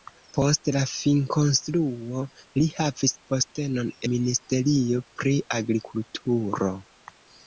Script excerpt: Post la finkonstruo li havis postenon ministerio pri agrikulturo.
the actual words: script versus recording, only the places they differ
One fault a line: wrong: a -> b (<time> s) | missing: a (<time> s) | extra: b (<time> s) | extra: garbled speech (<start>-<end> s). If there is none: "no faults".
no faults